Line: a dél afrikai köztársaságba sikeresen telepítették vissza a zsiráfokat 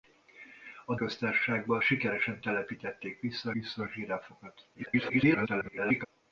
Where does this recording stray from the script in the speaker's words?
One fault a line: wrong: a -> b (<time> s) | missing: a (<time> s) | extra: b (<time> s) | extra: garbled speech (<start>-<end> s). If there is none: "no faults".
missing: dél afrikai (0.9 s)
extra: vissza (3.5 s)
extra: garbled speech (4.7-6.1 s)